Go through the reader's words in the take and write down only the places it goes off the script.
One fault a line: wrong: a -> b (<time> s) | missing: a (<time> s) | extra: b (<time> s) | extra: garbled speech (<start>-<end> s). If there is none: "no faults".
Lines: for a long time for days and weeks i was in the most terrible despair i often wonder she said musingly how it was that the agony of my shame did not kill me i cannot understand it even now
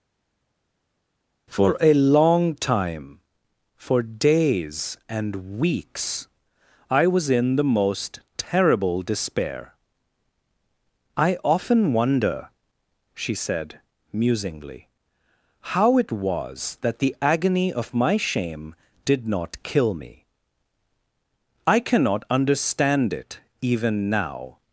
no faults